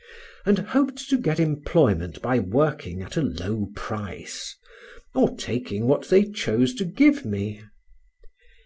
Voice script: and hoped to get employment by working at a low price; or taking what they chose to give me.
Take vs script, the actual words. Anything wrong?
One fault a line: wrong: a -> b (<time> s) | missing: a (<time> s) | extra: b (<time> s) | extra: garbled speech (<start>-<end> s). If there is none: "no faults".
no faults